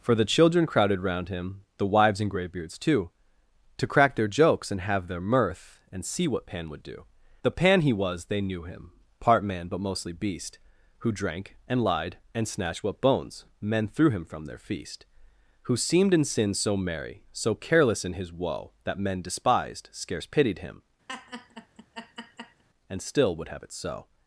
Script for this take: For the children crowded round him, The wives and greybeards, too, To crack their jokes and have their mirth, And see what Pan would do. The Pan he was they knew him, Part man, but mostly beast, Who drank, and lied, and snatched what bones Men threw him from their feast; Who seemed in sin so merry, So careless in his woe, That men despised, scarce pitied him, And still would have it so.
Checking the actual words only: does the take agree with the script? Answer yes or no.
yes